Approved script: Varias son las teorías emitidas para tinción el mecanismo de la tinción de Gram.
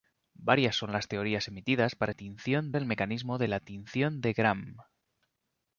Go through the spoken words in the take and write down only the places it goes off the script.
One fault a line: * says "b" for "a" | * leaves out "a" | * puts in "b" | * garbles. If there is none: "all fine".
all fine